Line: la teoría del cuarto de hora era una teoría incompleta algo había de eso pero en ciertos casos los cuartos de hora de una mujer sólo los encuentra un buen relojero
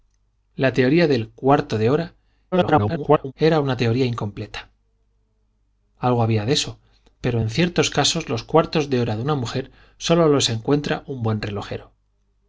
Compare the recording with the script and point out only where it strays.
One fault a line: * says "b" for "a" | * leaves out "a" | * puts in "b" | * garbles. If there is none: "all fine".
* garbles